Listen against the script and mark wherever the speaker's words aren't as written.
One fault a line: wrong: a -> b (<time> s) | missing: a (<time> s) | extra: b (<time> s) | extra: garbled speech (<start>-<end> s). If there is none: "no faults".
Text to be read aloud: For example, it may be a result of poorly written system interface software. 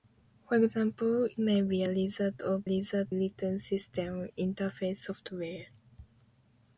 missing: it (1.3 s)
wrong: poorly -> result (2.6 s)